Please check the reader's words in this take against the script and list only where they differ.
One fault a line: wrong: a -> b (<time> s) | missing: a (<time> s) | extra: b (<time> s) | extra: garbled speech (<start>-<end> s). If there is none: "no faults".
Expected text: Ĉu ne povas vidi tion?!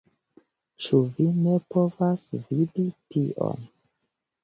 extra: vi (1.2 s)